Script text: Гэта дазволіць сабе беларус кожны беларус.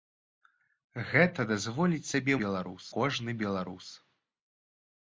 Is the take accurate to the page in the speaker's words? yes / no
yes